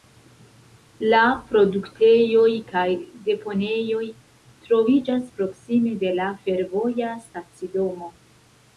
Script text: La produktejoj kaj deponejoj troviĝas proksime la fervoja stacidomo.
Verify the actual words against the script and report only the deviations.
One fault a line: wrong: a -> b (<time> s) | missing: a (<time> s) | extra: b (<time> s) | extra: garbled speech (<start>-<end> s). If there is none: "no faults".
extra: de (6.1 s)